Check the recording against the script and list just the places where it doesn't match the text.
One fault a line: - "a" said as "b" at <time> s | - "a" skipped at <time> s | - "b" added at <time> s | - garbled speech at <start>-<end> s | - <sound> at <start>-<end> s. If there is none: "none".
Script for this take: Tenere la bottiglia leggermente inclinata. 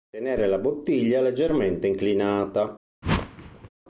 - whoosh at 3.0-3.7 s